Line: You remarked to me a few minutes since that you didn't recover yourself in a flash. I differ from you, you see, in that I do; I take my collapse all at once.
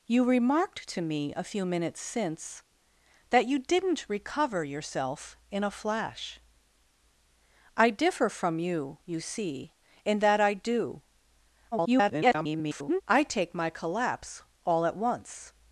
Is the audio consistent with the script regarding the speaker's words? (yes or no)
no